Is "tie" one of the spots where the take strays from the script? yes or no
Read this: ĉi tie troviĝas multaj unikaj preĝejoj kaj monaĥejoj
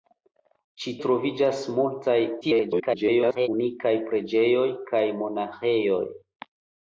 yes